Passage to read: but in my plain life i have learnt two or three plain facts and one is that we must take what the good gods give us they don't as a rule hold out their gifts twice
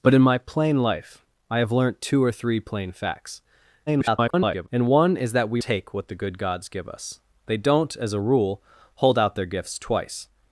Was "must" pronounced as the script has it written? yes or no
no